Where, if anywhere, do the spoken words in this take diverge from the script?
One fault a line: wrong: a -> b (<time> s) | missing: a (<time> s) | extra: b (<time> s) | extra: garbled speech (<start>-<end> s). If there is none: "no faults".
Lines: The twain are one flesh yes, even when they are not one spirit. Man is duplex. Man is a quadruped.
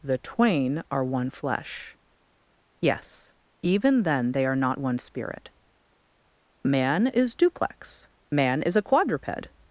wrong: when -> then (4.0 s)